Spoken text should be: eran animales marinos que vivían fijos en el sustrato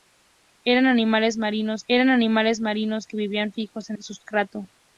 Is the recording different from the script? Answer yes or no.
yes